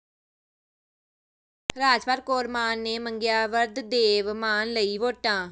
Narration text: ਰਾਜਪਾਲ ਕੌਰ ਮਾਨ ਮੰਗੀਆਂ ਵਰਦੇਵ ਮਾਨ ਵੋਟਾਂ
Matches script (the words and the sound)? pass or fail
fail